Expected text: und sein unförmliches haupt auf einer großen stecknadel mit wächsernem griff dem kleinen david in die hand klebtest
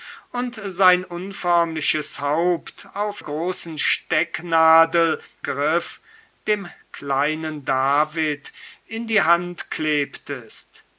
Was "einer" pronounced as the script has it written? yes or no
no